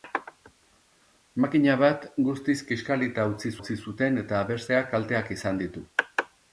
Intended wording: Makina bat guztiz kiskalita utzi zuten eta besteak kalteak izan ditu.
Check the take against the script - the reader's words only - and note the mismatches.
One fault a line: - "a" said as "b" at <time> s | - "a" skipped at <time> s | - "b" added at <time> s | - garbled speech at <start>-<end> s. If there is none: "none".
- "utzi" added at 3.6 s